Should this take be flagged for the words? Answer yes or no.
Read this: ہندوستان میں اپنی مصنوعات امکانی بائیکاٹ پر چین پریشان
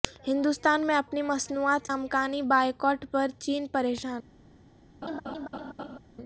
no